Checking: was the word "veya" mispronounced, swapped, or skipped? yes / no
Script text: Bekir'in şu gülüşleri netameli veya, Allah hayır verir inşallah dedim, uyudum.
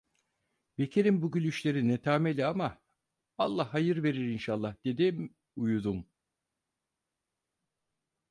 yes